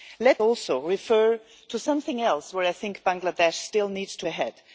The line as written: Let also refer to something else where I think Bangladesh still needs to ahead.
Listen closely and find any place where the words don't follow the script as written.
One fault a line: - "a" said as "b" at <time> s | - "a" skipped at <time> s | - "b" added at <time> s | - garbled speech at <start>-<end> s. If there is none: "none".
none